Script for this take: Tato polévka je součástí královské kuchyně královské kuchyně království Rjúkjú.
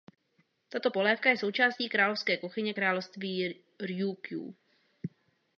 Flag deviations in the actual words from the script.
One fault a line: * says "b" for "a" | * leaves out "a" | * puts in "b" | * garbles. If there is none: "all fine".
* leaves out "královské kuchyně"